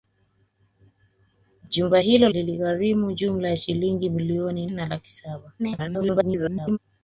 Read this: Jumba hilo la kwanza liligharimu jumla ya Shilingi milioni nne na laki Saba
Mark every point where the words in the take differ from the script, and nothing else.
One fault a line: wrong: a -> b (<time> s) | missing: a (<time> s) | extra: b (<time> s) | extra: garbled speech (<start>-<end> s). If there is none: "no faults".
missing: la kwanza (2.3 s)
missing: nne (4.7 s)
extra: garbled speech (5.6-6.8 s)